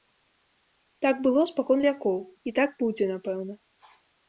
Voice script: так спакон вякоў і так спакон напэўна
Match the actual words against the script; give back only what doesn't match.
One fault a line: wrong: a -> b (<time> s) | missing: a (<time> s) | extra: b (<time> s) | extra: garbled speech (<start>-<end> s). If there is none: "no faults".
extra: было (1.3 s)
wrong: спакон -> будзе (2.9 s)